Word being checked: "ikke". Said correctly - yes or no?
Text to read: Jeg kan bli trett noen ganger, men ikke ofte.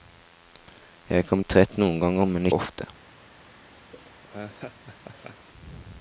no